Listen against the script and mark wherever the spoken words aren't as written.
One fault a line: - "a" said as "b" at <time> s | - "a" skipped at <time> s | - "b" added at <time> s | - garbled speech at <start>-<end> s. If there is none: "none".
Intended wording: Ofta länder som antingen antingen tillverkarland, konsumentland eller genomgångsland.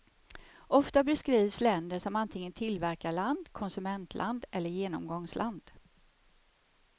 - "beskrivs" added at 1.0 s
- "antingen" skipped at 2.5 s